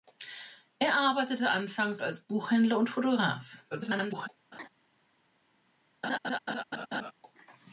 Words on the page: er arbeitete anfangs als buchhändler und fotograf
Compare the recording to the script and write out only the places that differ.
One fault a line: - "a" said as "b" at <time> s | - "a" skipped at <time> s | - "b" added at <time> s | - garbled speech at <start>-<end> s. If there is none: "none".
- garbled speech at 3.7-4.3 s